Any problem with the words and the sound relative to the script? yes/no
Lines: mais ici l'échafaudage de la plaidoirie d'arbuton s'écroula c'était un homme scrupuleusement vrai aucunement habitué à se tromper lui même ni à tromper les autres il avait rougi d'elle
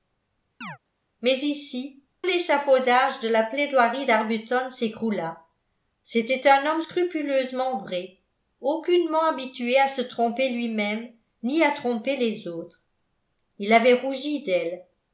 yes